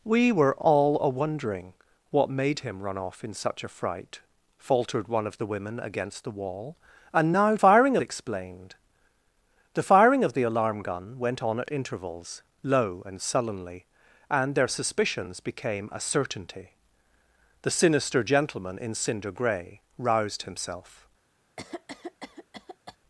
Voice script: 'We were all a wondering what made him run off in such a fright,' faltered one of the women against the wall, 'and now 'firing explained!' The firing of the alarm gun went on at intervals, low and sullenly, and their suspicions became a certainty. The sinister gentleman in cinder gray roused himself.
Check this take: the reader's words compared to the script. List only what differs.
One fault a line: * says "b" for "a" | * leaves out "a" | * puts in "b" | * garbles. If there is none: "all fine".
all fine